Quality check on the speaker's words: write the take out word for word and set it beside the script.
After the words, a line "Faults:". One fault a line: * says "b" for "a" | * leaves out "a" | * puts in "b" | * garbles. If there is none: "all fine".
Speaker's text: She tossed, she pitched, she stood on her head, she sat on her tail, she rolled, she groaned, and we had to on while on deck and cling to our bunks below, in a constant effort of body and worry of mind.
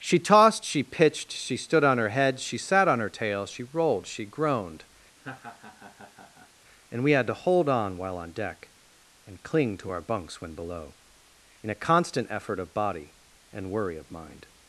She tossed, she pitched, she stood on her head, she sat on her tail, she rolled, she groaned, and we had to hold on while on deck and cling to our bunks when below, in a constant effort of body and worry of mind.
Faults:
* puts in "hold"
* puts in "when"